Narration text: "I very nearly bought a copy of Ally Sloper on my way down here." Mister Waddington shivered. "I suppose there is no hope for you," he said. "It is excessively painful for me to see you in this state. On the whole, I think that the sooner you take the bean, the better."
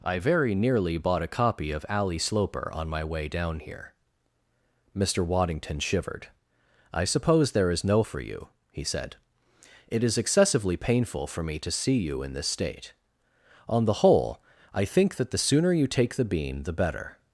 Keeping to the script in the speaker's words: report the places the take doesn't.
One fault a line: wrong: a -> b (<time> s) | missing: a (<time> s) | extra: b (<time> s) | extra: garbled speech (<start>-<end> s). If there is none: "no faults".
missing: hope (8.0 s)